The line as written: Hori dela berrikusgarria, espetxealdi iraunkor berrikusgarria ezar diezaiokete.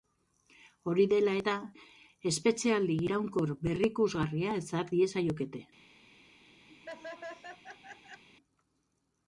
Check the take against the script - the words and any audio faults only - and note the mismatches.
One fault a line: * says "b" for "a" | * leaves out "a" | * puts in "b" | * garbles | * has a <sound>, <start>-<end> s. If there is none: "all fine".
* says "eta" for "berrikusgarria"
* has a laugh, 6.7-8.2 s